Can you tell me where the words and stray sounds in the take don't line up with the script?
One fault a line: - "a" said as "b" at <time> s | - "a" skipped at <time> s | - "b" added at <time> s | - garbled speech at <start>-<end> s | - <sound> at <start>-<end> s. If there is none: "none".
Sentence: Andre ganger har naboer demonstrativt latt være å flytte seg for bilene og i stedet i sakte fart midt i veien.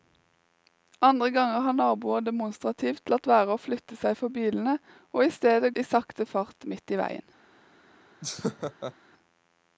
- laugh at 8.2-8.9 s